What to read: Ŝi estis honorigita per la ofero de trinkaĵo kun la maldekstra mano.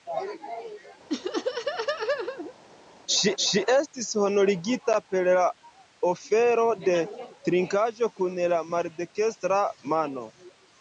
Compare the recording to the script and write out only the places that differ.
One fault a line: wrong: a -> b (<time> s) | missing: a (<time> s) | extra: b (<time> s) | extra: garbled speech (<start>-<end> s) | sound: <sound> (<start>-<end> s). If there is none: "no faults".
sound: laugh (1.1-2.5 s)
extra: ŝi (3.4 s)